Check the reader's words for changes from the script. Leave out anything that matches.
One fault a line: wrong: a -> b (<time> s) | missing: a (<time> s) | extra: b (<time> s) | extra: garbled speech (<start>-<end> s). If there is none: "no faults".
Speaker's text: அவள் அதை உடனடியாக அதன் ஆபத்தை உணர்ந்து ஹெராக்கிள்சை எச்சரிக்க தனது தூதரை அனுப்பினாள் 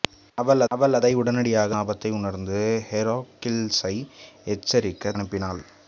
extra: அவள் (0.7 s)
missing: அதன் (1.7 s)
missing: தனது தூதரை (5.1 s)